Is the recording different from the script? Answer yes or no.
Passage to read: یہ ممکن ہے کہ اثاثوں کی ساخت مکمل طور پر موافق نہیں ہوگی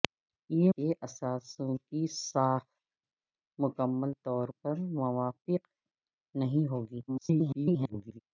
yes